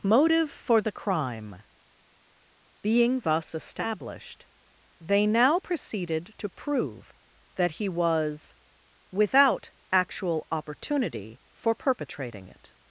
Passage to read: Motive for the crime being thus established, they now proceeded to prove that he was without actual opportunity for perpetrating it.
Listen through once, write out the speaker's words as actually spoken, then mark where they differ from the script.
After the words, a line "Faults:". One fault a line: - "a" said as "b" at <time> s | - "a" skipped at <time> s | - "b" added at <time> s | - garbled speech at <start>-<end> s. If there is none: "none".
Motive for the crime being thus established, they now proceeded to prove that he was without actual opportunity for perpetrating it.
Faults:
none